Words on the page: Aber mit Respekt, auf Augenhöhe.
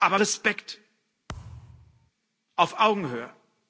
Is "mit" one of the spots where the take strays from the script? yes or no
yes